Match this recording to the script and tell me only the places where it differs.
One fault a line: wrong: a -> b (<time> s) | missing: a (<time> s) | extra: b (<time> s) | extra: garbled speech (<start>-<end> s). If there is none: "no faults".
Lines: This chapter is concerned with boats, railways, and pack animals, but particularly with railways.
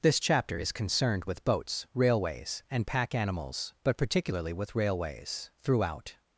extra: Throughout (5.6 s)